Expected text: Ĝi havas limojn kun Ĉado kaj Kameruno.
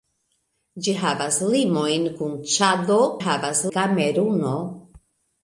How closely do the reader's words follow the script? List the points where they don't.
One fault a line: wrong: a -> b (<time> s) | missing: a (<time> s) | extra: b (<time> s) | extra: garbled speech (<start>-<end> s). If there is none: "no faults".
wrong: kaj -> havas (3.2 s)